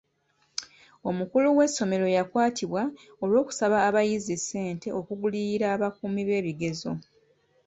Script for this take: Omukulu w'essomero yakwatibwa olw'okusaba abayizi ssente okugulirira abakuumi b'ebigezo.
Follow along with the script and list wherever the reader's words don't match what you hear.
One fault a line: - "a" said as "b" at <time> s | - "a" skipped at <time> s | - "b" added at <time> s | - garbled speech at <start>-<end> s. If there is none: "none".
none